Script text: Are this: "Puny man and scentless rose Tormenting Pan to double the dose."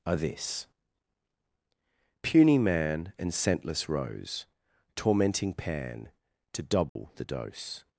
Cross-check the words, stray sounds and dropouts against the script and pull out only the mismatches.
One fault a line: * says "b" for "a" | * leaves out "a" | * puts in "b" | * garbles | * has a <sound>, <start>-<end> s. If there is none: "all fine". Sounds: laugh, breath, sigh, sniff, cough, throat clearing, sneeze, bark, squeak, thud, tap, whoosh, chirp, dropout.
* has a dropout, 6.9-7.0 s